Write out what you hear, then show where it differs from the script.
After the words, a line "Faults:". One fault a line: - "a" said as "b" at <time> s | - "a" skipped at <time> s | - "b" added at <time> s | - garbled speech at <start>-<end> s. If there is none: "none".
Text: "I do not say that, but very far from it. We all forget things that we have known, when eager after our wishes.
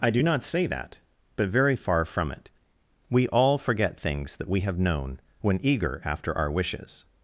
"I do not say that, but very far from it. We all forget things that we have known, when eager after our wishes.
Faults:
none